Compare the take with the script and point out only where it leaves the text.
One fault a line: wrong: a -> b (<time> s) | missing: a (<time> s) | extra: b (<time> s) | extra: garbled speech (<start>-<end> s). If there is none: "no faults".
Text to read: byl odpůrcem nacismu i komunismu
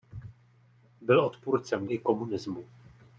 missing: nacismu (1.9 s)